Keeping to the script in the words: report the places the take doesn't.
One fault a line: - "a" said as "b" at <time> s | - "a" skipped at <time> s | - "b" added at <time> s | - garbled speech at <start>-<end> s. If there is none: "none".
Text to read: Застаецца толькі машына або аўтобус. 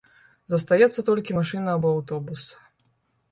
none